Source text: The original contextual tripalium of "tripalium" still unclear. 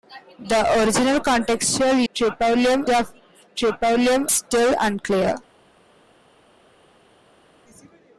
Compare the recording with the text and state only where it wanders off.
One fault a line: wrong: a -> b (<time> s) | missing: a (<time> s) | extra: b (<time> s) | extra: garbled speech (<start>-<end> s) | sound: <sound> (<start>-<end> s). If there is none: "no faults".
no faults